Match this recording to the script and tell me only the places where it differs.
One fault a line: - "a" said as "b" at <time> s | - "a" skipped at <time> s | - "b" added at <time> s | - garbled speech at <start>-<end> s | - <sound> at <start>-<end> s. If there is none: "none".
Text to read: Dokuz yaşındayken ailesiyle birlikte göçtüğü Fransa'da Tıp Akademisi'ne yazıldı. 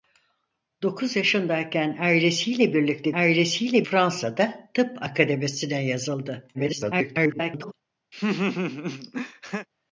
- "göçtüğü" said as "ailesiyle" at 3.1 s
- garbled speech at 6.5-7.7 s
- laugh at 8.1-9.7 s